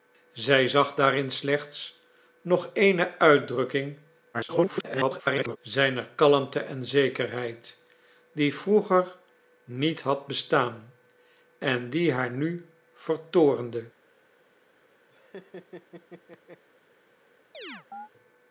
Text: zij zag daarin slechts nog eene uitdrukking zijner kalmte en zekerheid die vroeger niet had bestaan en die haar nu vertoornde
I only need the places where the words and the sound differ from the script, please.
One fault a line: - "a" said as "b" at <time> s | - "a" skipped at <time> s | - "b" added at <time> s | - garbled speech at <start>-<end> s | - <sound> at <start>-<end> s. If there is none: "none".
- garbled speech at 4.3-5.6 s
- laugh at 15.1-16.6 s
- chirp at 17.5-18.1 s